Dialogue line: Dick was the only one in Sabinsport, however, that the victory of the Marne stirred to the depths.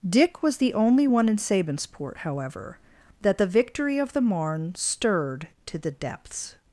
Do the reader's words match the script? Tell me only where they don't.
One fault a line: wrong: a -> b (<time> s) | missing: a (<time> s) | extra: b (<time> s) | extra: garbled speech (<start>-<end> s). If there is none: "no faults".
no faults